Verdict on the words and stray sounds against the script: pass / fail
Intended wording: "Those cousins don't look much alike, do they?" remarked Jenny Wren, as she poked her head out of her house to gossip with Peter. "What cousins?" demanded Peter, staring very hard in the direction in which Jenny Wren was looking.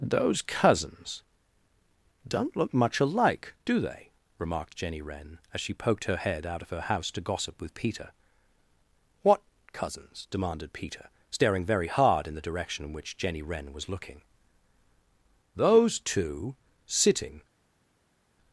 fail